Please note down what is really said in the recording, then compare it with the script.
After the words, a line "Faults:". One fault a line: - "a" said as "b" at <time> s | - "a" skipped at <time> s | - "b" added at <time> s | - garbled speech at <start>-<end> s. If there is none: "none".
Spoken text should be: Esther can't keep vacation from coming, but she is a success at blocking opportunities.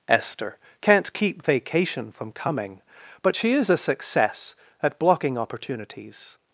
Esther can't keep vacation from coming, but she is a success at blocking opportunities.
Faults:
none